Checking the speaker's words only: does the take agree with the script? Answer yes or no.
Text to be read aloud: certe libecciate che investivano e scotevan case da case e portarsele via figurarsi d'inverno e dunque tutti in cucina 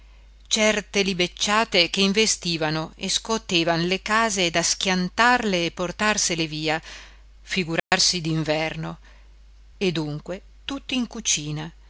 no